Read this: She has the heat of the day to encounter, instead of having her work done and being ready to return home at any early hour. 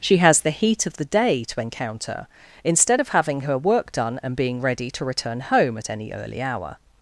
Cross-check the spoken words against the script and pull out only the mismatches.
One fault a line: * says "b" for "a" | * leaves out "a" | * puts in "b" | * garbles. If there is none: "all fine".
all fine